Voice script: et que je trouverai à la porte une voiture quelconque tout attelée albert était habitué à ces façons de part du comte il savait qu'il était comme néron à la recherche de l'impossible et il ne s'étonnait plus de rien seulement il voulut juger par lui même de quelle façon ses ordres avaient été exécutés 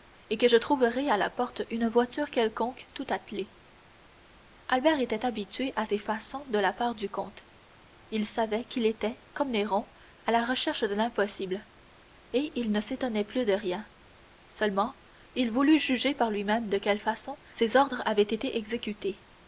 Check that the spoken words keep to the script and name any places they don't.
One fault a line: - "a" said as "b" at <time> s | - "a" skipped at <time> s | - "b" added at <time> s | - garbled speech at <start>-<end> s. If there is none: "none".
- "la" added at 6.6 s